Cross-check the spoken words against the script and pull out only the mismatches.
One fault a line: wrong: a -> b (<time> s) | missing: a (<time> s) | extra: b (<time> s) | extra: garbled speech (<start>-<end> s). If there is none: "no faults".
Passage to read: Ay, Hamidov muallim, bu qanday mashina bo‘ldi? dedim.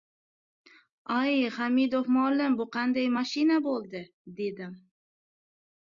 no faults